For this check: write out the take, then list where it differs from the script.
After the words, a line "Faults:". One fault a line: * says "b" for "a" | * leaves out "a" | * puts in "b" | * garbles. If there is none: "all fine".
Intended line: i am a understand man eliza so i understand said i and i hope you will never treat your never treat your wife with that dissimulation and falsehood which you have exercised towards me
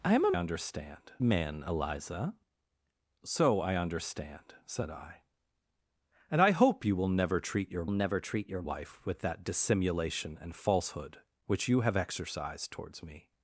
i am a understand man eliza so i understand said i and i hope you will never treat your never treat your wife with that dissimulation and falsehood which you have exercised towards me
Faults:
all fine